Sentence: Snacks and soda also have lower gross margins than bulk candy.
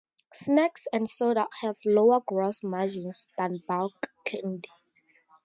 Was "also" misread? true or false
true